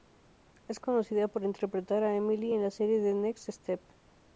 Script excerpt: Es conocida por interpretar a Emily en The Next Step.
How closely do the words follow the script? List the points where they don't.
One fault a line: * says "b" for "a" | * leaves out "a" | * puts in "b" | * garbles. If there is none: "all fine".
* puts in "la serie"